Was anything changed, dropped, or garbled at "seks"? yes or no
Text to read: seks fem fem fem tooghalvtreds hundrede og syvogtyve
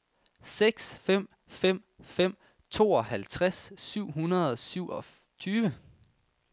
no